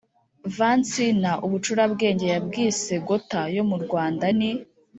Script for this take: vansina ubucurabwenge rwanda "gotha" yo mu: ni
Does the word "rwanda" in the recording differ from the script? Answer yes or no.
yes